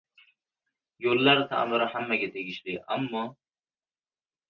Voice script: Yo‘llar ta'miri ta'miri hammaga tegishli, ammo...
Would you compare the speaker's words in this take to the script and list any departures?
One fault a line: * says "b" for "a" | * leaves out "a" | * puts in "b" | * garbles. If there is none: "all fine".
* leaves out "ta'miri"